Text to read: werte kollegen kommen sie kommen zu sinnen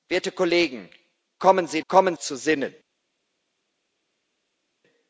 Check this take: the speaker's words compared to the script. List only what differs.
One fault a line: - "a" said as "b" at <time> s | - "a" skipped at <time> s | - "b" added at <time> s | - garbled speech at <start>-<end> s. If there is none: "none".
none